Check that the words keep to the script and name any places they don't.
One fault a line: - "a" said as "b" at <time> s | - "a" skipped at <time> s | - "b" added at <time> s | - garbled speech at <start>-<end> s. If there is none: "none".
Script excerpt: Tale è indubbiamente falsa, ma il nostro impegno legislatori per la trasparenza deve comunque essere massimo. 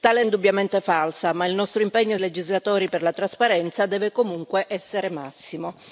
none